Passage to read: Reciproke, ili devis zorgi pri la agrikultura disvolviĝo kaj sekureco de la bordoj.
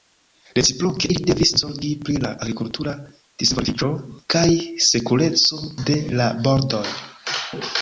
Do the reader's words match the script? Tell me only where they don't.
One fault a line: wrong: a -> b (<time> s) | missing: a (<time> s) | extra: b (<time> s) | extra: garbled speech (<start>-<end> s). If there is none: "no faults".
no faults